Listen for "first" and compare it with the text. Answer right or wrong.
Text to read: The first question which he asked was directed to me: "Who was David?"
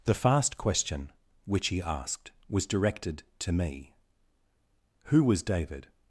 wrong